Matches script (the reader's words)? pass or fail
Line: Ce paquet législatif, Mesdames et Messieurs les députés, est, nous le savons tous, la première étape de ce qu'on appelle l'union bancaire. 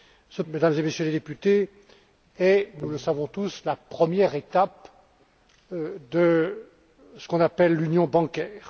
fail